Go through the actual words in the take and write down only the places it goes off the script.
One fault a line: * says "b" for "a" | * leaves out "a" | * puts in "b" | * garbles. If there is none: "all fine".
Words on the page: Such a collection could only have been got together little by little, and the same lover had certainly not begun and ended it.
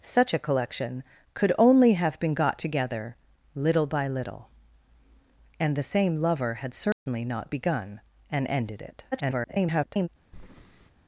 * garbles